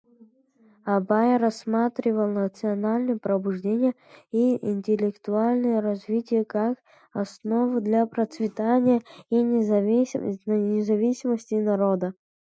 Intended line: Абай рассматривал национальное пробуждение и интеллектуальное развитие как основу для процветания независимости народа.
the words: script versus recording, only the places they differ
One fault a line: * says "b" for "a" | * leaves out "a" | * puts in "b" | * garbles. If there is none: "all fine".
* puts in "и"